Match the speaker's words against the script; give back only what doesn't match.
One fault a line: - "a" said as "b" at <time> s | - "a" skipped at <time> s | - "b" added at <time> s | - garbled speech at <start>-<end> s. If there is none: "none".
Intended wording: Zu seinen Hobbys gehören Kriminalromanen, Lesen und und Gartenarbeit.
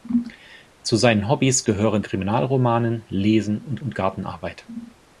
none